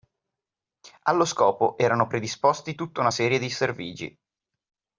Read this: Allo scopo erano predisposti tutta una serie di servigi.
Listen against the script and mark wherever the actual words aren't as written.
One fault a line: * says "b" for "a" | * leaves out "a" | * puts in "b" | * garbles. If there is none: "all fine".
all fine